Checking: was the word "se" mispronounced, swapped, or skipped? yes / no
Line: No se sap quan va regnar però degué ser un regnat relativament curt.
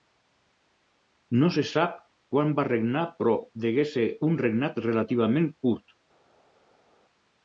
no